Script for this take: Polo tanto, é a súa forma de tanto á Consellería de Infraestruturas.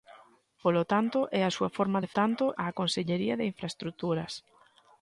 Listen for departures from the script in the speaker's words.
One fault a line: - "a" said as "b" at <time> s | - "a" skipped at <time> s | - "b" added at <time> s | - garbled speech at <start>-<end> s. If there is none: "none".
none